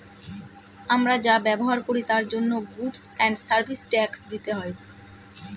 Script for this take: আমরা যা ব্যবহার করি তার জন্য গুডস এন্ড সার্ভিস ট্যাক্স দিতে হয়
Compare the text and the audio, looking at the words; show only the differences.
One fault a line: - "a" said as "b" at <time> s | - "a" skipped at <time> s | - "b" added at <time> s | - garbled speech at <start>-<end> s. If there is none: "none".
none